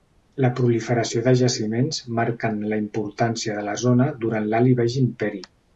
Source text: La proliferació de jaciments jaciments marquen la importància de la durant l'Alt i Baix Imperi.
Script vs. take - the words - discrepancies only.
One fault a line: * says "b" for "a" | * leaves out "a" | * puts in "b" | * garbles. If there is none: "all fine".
* leaves out "jaciments"
* puts in "zona"